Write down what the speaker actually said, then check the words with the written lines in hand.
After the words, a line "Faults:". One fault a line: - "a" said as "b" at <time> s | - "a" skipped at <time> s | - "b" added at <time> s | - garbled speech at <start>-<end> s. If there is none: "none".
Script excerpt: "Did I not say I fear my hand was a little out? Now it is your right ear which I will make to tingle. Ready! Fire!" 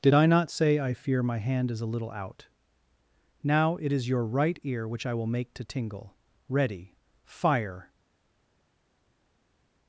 "Did I not say I fear my hand is a little out? Now it is your right ear which I will make to tingle. Ready! Fire!"
Faults:
- "was" said as "is" at 1.7 s